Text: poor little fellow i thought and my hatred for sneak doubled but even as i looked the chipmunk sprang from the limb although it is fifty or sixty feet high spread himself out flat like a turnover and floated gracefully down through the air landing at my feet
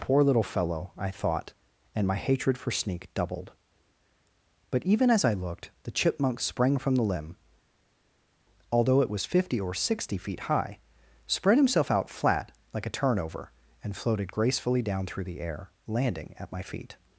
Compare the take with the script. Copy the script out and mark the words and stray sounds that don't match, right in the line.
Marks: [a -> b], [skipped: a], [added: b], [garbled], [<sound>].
poor little fellow i thought and my hatred for sneak doubled but even as i looked the chipmunk sprang from the limb although it [is -> was] fifty or sixty feet high spread himself out flat like a turnover and floated gracefully down through the air landing at my feet